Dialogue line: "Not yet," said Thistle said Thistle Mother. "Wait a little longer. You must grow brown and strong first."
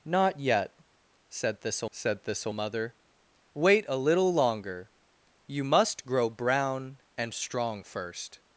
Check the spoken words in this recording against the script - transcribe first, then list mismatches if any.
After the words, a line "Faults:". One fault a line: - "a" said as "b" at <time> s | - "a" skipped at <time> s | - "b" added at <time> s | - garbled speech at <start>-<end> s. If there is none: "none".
"Not yet," said Thistle said Thistle Mother. "Wait a little longer. You must grow brown and strong first."
Faults:
none